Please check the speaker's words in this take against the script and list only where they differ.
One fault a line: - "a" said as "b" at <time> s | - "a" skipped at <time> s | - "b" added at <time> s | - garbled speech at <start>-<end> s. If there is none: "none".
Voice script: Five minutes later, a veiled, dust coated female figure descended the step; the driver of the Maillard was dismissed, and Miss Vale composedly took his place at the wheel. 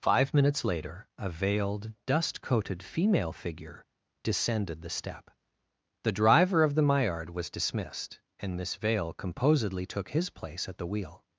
none